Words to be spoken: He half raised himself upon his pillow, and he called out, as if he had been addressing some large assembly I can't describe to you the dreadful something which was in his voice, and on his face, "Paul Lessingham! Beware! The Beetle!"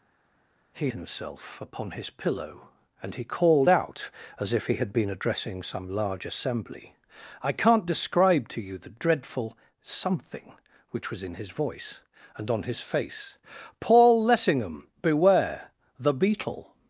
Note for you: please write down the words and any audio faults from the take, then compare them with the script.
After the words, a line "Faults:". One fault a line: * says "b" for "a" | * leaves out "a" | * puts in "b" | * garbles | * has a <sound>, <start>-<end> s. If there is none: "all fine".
He himself upon his pillow, and he called out, as if he had been addressing some large assembly I can't describe to you the dreadful something which was in his voice, and on his face, "Paul Lessingham! Beware! The Beetle!"
Faults:
* leaves out "half raised"